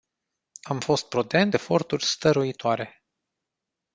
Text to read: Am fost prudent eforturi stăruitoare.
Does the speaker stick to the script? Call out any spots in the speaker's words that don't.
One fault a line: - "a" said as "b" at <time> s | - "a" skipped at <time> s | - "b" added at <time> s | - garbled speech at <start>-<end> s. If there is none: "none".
none